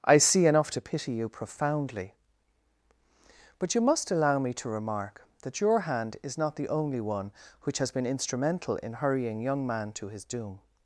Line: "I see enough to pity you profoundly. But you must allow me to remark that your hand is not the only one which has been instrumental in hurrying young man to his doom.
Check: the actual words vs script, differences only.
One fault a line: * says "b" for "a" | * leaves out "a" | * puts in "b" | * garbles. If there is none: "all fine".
all fine